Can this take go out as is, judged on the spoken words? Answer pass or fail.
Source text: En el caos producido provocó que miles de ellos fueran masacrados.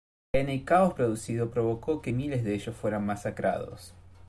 pass